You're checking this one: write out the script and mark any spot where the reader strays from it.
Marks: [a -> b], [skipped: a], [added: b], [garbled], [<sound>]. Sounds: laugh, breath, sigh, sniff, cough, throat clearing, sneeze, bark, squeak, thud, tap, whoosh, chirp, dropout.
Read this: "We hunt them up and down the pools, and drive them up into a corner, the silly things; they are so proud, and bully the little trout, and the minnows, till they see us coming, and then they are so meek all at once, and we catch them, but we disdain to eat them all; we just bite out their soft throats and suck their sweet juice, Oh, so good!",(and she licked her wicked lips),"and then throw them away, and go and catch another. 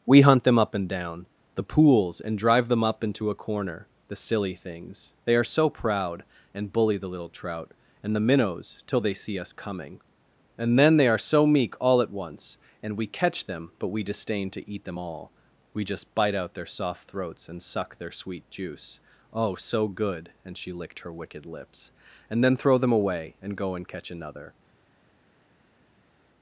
"We hunt them up and down the pools, and drive them up into a corner, the silly things; they are so proud, and bully the little trout, and the minnows, till they see us coming, and then they are so meek all at once, and we catch them, but we disdain to eat them all; we just bite out their soft throats and suck their sweet juice, Oh, so good!",(and she licked her wicked lips),"and then throw them away, and go and catch another.